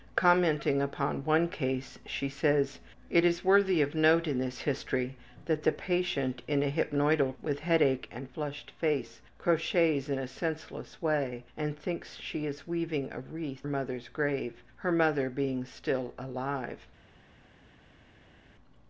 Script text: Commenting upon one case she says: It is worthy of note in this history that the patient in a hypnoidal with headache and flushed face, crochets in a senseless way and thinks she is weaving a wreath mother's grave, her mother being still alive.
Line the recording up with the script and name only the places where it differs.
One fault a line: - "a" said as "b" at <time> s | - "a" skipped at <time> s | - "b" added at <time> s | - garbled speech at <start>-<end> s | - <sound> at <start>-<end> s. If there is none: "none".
none